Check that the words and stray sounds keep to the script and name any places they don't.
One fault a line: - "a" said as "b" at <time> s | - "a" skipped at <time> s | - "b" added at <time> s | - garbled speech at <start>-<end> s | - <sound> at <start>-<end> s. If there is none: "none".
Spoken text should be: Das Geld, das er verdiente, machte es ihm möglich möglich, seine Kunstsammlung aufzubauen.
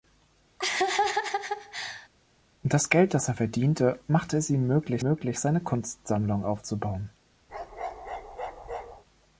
- laugh at 0.6-2.1 s
- bark at 7.5-9.0 s